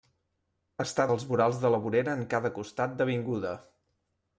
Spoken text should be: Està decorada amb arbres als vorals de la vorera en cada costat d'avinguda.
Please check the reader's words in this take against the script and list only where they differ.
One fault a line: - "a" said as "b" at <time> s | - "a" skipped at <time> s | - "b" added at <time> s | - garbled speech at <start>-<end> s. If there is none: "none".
- "decorada amb arbres" skipped at 1.0 s